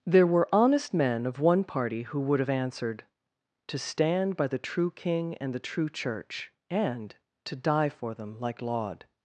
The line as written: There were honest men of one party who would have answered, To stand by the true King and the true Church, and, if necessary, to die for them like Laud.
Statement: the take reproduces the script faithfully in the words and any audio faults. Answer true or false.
false